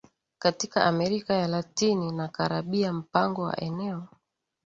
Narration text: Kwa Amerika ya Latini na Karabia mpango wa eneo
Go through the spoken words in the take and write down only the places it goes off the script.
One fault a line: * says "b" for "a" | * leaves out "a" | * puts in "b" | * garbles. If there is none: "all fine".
* says "Katika" for "Kwa"